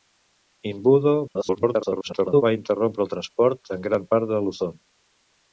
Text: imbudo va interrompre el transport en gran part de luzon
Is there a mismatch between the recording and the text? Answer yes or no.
yes